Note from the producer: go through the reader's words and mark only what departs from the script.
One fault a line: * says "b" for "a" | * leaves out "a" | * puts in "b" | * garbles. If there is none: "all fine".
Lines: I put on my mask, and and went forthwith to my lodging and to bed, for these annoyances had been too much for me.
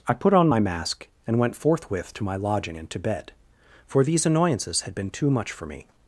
* leaves out "and"